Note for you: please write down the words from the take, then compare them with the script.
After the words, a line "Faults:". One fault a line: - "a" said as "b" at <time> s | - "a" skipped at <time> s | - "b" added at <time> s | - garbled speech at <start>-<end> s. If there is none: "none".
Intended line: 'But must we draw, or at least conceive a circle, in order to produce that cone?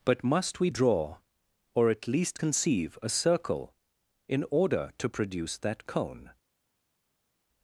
'But must we draw, or at least conceive a circle, in order to produce that cone?
Faults:
none